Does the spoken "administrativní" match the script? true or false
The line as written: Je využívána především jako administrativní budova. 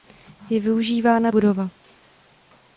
false